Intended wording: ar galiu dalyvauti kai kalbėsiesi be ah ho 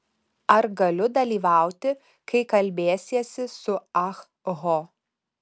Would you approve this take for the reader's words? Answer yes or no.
no